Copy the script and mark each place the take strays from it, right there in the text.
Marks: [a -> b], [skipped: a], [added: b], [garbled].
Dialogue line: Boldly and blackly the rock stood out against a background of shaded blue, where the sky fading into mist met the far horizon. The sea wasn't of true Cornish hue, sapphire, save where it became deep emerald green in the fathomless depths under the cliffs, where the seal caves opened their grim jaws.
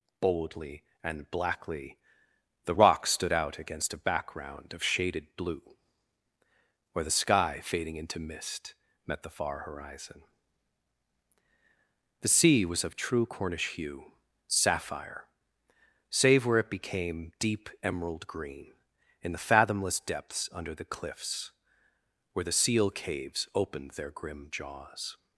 Boldly and blackly the rock stood out against a background of shaded blue, where the sky fading into mist met the far horizon. The sea [wasn't -> was] of true Cornish hue, sapphire, save where it became deep emerald green in the fathomless depths under the cliffs, where the seal caves opened their grim jaws.